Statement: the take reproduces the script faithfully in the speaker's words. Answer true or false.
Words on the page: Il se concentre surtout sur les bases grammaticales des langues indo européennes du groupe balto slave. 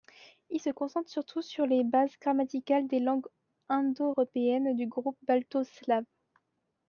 true